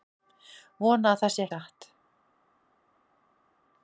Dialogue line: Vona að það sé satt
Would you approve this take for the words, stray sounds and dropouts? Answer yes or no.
yes